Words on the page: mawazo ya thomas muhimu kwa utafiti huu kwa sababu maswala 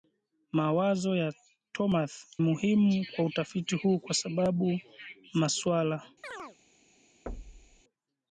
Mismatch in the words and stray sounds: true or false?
true